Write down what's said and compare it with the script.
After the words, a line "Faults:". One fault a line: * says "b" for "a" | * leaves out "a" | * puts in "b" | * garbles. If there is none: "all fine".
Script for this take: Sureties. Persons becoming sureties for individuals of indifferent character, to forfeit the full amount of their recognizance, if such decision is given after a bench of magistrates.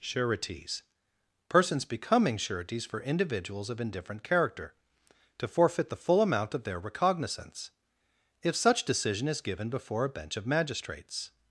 Sureties. Persons becoming sureties for individuals of indifferent character, to forfeit the full amount of their recognizance, if such decision is given before a bench of magistrates.
Faults:
* says "before" for "after"